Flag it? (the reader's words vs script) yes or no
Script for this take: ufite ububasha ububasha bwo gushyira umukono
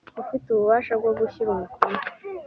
yes